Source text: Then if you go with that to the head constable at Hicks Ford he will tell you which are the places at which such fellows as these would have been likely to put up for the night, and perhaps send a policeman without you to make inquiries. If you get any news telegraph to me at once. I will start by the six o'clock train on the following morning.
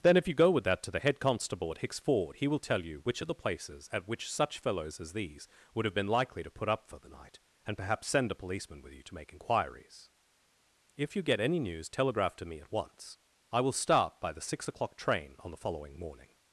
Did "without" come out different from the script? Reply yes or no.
yes